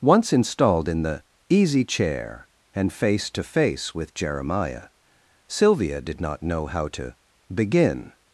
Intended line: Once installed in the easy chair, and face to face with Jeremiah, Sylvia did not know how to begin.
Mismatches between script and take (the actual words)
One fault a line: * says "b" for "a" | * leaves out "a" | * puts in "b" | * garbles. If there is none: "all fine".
all fine